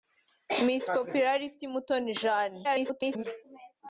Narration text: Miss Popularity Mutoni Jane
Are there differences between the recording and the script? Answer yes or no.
yes